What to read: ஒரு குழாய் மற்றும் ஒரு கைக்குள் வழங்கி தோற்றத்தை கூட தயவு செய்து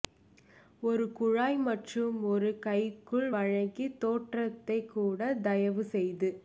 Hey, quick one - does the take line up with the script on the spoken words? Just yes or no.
yes